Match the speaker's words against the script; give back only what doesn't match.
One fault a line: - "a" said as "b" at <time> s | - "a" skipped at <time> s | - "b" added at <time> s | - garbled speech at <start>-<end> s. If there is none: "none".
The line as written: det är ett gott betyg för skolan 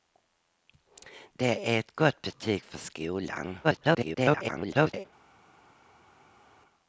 - garbled speech at 3.6-5.1 s